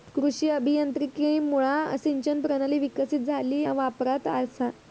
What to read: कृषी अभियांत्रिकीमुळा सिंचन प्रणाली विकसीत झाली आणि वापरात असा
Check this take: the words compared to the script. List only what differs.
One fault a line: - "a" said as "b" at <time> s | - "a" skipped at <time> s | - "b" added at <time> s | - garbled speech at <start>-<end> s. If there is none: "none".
- "आणि" skipped at 3.6 s